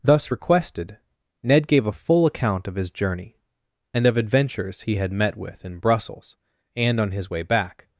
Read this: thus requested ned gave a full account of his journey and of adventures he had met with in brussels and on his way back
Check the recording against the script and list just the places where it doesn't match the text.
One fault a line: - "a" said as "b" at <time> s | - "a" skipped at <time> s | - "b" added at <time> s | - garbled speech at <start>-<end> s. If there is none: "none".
none